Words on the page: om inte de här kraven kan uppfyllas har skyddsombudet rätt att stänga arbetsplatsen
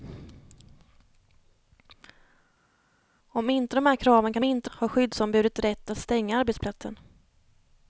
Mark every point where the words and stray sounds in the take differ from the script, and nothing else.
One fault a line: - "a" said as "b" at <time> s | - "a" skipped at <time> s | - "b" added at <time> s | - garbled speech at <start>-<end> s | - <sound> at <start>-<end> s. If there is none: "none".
- "uppfyllas" said as "inte" at 4.4 s